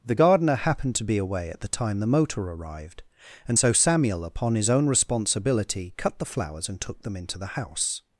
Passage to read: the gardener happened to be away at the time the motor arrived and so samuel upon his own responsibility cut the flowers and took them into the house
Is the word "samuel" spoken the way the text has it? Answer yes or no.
yes